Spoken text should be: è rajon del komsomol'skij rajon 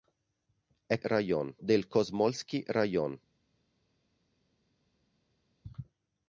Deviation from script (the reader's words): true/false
false